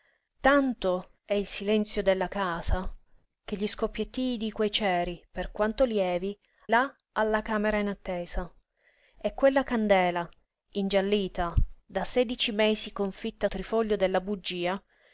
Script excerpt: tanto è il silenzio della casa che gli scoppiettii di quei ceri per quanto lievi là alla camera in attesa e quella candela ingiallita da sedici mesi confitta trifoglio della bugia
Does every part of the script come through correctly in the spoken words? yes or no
yes